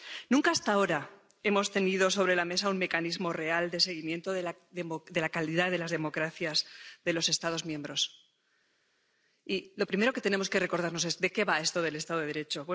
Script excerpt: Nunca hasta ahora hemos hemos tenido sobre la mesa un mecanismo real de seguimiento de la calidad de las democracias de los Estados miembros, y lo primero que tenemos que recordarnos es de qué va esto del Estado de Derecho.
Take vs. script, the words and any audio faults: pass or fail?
fail